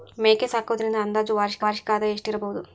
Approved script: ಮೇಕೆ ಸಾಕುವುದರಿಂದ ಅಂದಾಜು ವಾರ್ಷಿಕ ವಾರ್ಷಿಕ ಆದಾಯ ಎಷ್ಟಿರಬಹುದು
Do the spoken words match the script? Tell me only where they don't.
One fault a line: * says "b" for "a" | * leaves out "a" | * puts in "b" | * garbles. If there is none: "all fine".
all fine